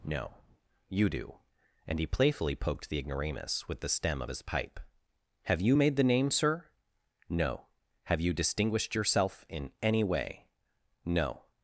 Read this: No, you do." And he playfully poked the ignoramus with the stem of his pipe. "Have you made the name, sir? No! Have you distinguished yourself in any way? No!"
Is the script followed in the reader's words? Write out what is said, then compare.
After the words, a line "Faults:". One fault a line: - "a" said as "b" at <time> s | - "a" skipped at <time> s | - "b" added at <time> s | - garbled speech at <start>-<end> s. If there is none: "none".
No, you do." And he playfully poked the ignoramus with the stem of his pipe. "Have you made the name, sir? No! Have you distinguished yourself in any way? No!"
Faults:
none